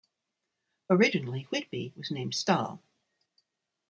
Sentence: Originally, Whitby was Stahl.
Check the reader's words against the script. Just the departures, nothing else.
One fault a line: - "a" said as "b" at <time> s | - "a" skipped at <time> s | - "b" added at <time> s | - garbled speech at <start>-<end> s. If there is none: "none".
- "named" added at 2.1 s